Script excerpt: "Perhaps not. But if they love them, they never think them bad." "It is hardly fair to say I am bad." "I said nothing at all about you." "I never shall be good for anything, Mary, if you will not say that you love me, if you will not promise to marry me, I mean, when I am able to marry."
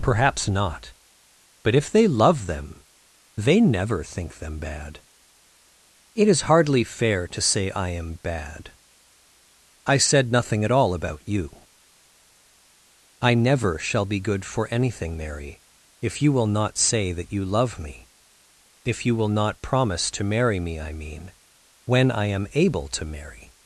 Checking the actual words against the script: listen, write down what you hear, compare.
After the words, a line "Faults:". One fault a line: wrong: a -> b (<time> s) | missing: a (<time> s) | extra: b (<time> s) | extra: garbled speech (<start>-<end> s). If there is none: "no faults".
"Perhaps not. But if they love them, they never think them bad." "It is hardly fair to say I am bad." "I said nothing at all about you." "I never shall be good for anything, Mary, if you will not say that you love me, if you will not promise to marry me, I mean, when I am able to marry."
Faults:
no faults